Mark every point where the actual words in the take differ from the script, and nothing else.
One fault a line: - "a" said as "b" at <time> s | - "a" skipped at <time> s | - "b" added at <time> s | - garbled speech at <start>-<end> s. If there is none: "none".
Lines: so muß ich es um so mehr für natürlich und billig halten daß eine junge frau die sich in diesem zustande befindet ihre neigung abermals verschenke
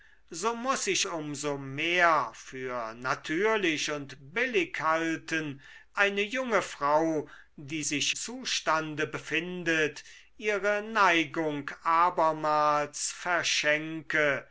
- "es" skipped at 1.1 s
- "daß" skipped at 5.6 s
- "in diesem" skipped at 8.2 s